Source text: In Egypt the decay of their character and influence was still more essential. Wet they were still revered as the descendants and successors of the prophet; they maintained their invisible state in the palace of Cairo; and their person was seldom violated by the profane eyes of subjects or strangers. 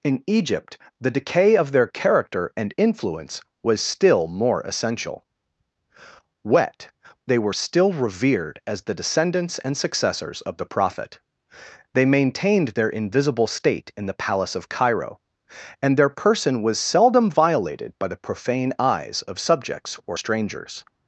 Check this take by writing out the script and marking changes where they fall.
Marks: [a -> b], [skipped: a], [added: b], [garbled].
In Egypt the decay of their character and influence was still more essential. Wet they were still revered as the descendants and successors of the prophet; they maintained their invisible state in the palace of Cairo; and their person was seldom violated by the profane eyes of subjects or strangers.